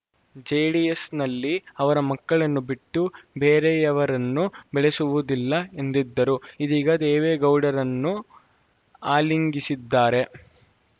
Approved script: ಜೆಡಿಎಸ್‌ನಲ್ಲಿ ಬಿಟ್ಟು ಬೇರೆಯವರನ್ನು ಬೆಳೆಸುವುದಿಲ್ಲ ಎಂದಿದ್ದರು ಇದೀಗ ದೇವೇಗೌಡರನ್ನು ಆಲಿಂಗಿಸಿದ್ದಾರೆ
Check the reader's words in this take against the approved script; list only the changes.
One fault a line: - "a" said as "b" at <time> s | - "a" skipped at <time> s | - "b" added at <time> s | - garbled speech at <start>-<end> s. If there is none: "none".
- "ಅವರ ಮಕ್ಕಳನ್ನು" added at 1.8 s